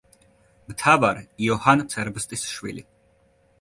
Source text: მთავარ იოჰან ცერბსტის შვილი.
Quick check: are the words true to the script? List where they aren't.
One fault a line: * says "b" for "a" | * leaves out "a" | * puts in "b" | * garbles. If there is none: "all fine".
all fine